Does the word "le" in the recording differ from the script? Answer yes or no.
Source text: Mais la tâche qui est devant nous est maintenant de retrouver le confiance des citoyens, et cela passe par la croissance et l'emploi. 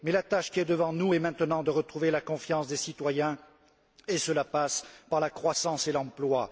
yes